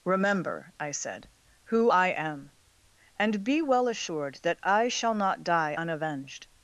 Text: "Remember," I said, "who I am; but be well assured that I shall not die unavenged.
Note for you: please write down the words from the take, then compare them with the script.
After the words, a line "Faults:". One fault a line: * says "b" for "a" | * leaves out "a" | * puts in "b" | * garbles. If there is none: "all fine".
"Remember," I said, "who I am; and be well assured that I shall not die unavenged.
Faults:
* says "and" for "but"